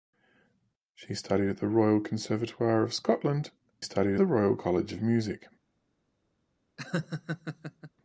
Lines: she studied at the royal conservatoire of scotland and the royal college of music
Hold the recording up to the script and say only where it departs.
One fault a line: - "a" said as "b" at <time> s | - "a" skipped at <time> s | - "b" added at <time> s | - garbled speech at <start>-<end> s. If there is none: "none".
- "and" said as "studied" at 3.8 s